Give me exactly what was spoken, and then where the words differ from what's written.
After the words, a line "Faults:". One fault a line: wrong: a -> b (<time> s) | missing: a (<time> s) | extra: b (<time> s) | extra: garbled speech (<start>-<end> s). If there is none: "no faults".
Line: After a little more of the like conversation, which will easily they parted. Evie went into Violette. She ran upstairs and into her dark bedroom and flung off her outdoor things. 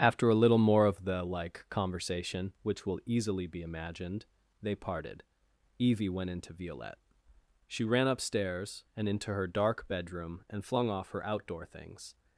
After a little more of the like conversation, which will easily be imagined, they parted. Evie went into Violette. She ran upstairs and into her dark bedroom and flung off her outdoor things.
Faults:
extra: be imagined (3.5 s)